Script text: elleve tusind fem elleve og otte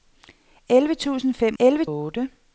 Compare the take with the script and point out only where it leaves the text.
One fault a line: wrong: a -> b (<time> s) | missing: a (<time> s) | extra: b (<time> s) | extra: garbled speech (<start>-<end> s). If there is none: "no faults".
no faults